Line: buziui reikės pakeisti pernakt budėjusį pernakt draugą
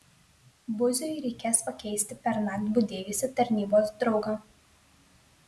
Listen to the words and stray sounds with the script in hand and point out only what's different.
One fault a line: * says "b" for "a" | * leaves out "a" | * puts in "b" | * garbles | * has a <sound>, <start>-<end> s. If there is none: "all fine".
* says "tarnybos" for "pernakt"